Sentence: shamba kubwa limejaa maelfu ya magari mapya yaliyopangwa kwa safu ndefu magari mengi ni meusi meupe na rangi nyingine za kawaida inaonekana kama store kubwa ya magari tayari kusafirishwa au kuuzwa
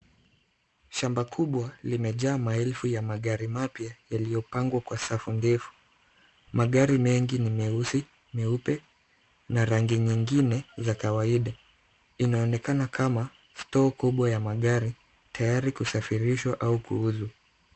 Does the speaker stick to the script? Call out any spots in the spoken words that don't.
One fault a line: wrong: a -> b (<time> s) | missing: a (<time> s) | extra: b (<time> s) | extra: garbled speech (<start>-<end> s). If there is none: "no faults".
no faults